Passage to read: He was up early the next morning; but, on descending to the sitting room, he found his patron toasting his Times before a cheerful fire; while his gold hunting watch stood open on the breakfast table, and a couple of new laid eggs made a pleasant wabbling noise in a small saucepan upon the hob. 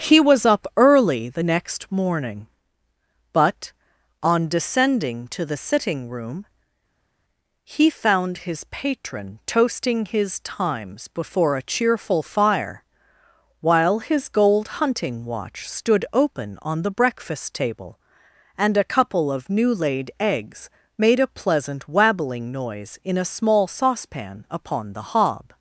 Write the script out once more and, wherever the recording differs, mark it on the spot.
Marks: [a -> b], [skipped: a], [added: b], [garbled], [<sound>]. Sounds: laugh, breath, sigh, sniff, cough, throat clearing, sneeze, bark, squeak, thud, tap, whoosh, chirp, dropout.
He was up early the next morning; but, on descending to the sitting room, he found his patron toasting his Times before a cheerful fire; while his gold hunting watch stood open on the breakfast table, and a couple of new laid eggs made a pleasant wabbling noise in a small saucepan upon the hob.